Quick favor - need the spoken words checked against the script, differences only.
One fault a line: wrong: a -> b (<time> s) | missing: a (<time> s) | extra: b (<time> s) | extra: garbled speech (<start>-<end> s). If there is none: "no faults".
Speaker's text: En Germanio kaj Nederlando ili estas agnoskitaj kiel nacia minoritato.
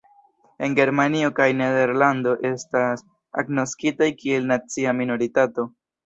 missing: ili (2.3 s)